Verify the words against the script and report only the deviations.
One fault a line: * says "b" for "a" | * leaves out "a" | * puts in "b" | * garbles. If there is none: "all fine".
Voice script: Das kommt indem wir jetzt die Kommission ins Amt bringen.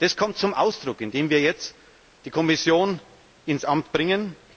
* puts in "zum Ausdruck"